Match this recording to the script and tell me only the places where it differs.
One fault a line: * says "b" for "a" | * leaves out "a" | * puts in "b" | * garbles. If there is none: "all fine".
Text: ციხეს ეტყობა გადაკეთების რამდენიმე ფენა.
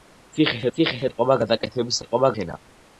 * puts in "ციხეს"
* says "ეტყობა" for "რამდენიმე"